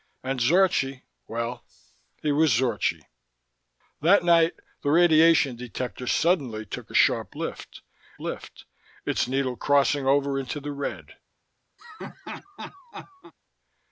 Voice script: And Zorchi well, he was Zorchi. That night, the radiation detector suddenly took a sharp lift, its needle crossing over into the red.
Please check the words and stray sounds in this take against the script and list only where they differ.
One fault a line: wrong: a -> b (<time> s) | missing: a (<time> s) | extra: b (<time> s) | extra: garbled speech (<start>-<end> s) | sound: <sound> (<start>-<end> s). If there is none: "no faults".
extra: lift (8.2 s)
sound: laugh (11.8-13.3 s)